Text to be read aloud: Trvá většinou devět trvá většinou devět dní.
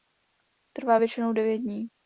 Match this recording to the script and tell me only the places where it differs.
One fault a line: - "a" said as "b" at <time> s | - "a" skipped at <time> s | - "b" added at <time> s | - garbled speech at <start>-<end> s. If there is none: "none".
- "trvá většinou devět" skipped at 1.6 s